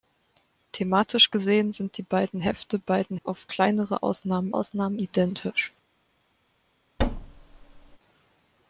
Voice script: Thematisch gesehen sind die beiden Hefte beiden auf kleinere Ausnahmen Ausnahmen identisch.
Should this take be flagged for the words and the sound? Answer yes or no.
yes